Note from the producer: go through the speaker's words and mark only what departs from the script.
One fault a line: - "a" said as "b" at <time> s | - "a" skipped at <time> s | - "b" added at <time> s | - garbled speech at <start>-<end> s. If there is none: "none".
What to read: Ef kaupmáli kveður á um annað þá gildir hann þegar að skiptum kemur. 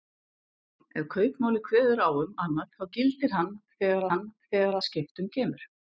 - "hann þegar" added at 4.1 s